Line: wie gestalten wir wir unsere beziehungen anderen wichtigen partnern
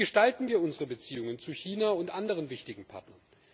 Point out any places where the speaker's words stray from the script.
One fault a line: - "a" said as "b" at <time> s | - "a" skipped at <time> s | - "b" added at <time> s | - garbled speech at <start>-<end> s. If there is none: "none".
- "wir" skipped at 0.6 s
- "zu china und" added at 1.4 s